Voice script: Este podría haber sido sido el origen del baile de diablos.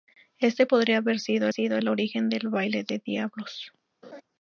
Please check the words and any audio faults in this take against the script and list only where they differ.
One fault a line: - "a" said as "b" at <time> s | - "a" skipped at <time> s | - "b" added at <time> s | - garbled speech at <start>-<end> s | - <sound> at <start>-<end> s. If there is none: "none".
- laugh at 4.0-4.2 s